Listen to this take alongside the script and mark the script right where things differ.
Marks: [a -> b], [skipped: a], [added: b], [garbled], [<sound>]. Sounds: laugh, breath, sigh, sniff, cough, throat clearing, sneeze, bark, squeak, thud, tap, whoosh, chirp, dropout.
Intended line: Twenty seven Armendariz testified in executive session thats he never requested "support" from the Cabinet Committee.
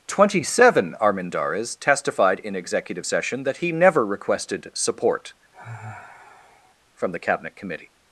Twenty seven Armendariz testified in executive session [thats -> that] he never requested "support" [sigh] from the Cabinet Committee.